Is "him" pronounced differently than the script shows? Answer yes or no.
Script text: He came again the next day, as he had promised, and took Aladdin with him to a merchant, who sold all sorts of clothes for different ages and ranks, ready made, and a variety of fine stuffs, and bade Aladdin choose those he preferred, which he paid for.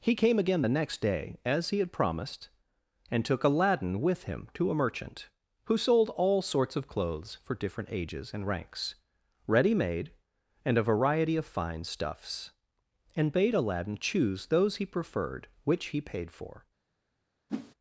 no